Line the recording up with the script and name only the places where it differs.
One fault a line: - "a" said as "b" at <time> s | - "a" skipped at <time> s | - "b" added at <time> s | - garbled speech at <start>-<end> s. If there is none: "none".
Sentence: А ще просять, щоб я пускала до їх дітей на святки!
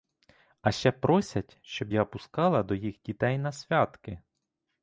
none